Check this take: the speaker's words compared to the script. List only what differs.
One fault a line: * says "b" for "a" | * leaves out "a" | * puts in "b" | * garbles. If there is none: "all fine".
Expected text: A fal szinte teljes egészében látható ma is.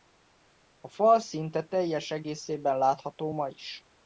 all fine